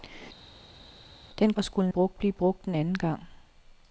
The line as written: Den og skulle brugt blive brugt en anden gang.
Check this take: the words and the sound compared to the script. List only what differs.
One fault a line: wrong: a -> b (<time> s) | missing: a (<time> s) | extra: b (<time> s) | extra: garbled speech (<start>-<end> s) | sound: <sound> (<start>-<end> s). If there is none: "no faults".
no faults